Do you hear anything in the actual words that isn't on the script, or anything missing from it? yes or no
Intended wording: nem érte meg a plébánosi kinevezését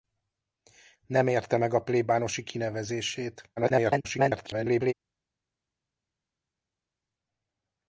yes